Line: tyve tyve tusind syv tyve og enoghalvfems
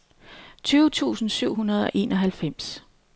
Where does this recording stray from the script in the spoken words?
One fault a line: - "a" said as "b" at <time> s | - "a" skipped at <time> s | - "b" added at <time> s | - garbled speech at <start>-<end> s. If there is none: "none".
- "tyve" skipped at 0.9 s
- "tyve" said as "hundrede" at 1.5 s